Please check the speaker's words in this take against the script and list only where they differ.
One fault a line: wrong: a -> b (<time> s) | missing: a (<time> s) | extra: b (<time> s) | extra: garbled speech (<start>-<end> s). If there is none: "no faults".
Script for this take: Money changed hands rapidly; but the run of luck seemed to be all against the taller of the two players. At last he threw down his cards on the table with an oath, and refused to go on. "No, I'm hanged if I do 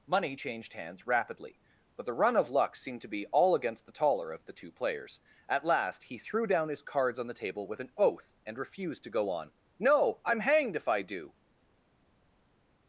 no faults